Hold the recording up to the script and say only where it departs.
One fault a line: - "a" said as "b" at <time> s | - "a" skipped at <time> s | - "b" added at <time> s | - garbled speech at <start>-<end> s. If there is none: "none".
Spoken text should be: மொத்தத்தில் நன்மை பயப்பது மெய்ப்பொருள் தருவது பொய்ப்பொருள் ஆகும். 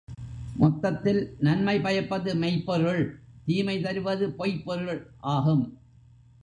- "தீமை" added at 3.5 s